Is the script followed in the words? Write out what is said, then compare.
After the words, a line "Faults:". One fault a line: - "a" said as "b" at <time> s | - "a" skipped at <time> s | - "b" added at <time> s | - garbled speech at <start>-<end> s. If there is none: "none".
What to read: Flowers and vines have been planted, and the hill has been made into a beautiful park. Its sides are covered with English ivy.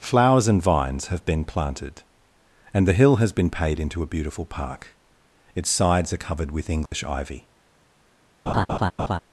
Flowers and vines have been planted, and the hill has been paid into a beautiful park. Its sides are covered with English ivy.
Faults:
- "made" said as "paid" at 3.5 s